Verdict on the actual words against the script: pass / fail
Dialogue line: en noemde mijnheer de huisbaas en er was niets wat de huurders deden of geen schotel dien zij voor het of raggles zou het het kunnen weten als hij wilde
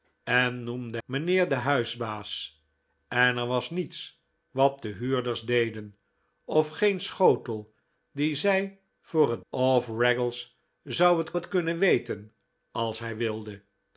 pass